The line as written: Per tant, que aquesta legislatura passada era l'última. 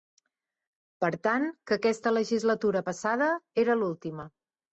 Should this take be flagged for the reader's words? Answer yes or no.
no